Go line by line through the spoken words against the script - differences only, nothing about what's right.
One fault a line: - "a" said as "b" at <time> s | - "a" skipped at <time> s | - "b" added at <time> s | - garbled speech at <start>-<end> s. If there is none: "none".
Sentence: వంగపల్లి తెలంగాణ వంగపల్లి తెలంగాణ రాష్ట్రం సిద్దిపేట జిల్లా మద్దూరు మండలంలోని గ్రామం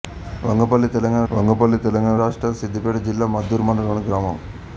none